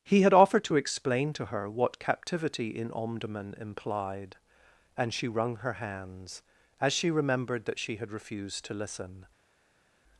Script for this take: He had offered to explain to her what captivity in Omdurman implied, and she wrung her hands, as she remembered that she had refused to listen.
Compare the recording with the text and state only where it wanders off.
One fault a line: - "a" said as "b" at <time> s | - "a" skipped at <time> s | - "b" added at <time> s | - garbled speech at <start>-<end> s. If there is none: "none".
none